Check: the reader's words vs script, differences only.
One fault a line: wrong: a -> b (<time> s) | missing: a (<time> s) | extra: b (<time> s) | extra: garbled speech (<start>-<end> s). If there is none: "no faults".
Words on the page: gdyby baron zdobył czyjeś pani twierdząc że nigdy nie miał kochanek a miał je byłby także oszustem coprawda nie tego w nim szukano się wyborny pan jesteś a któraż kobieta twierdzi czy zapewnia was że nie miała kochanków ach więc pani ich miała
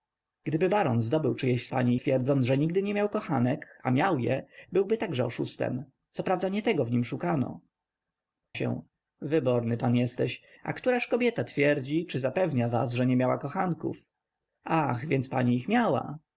no faults